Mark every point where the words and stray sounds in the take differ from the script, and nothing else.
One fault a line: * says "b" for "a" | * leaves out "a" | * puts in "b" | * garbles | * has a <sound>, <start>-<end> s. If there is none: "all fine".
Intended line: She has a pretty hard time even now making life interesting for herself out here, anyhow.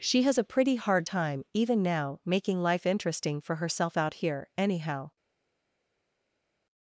all fine